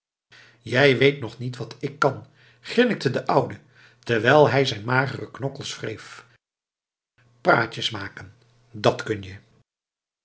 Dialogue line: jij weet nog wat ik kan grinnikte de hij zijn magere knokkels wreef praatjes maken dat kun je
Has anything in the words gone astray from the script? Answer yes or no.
yes